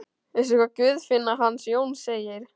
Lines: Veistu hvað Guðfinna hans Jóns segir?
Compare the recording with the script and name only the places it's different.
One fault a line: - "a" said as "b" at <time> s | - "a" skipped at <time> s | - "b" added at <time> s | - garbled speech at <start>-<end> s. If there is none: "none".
none